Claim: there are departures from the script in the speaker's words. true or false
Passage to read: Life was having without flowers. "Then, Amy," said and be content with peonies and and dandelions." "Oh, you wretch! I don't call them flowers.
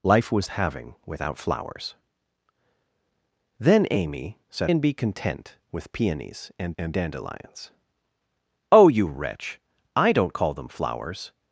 false